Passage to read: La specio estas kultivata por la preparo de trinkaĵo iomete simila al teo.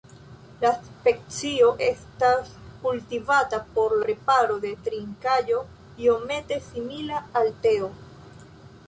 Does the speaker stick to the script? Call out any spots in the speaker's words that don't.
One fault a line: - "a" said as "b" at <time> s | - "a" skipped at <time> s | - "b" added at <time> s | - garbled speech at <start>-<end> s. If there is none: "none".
- "la" skipped at 4.0 s